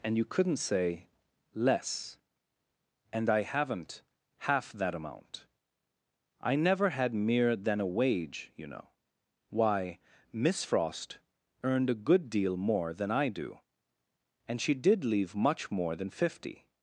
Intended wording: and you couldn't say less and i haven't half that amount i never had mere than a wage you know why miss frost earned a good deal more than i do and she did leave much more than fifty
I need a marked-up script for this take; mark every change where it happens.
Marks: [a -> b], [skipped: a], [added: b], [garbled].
and you couldn't say less and i haven't half that amount i never had mere than a wage you know why miss frost earned a good deal more than i do and she did leave much more than fifty